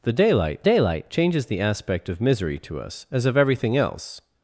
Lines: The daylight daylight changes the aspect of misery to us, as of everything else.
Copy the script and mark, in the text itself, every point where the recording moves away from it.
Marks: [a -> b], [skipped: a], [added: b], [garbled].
The daylight daylight changes the aspect of misery to us, as of everything else.